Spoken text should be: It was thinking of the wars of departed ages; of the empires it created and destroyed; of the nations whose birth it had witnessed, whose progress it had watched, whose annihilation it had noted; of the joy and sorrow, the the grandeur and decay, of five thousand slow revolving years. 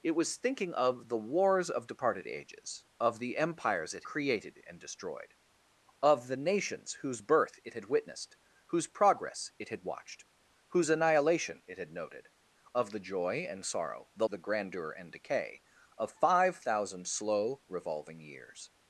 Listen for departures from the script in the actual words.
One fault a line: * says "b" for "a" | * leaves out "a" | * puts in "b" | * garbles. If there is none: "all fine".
all fine